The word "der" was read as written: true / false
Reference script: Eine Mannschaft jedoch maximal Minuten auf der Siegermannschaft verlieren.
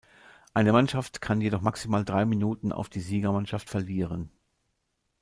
false